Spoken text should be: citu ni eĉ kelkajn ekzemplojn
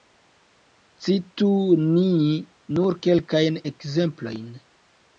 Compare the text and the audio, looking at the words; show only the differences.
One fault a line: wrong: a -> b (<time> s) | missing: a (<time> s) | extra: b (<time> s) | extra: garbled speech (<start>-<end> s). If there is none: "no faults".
wrong: eĉ -> nur (2.8 s)